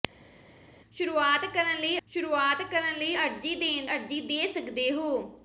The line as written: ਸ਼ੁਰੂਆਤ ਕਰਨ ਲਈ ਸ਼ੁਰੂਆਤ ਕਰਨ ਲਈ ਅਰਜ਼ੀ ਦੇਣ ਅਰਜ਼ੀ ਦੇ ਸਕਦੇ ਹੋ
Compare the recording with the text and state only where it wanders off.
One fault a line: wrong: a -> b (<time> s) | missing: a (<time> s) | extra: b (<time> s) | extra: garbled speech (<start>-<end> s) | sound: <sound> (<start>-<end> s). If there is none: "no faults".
no faults